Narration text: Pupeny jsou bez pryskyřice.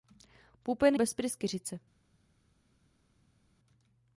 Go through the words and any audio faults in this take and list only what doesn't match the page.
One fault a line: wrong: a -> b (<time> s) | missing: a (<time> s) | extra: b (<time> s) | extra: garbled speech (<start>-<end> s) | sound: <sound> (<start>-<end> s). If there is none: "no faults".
missing: jsou (1.0 s)